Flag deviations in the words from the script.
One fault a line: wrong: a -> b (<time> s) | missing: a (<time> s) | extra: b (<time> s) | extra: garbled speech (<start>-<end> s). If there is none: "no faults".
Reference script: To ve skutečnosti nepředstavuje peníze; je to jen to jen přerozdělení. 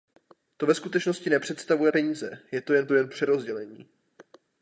no faults